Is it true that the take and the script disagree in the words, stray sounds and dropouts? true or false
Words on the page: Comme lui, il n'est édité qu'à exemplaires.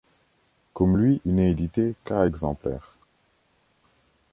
false